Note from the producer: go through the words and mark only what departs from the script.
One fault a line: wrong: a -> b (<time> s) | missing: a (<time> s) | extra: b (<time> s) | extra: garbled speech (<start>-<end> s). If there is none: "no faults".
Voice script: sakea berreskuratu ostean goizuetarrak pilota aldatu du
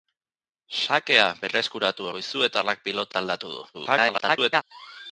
missing: ostean (2.1 s)
extra: garbled speech (3.7-4.6 s)